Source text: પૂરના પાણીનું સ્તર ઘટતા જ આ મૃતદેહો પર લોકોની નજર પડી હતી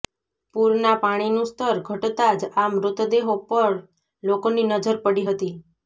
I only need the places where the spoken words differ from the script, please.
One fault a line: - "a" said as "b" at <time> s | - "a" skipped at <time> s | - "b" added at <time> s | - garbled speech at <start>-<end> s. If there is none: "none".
none